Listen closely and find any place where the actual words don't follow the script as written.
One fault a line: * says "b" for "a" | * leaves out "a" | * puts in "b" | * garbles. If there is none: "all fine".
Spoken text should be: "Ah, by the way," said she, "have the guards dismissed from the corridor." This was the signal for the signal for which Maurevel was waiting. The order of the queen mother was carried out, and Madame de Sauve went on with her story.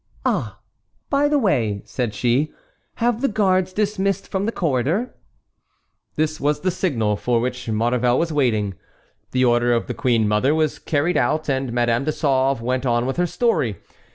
* leaves out "the signal for"